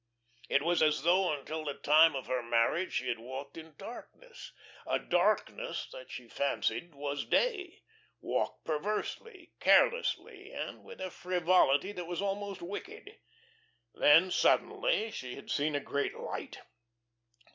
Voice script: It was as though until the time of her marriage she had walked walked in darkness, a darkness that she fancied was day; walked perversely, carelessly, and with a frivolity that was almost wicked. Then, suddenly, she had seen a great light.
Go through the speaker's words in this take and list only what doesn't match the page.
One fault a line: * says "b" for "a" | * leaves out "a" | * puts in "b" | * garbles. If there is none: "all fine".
* leaves out "walked"